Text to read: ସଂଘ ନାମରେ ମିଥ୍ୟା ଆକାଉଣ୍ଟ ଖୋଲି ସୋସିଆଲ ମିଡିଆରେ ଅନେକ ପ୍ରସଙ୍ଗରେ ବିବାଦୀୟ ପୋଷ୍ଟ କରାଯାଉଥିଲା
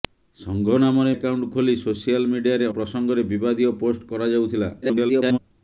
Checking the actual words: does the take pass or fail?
fail